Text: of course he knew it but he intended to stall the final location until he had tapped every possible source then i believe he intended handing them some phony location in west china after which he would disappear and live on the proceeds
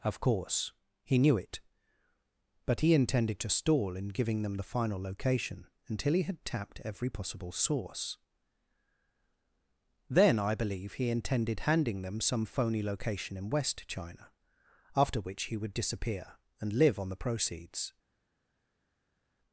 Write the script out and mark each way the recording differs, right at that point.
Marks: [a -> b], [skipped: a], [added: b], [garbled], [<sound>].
of course he knew it but he intended to stall [added: in giving them] the final location until he had tapped every possible source then i believe he intended handing them some phony location in west china after which he would disappear and live on the proceeds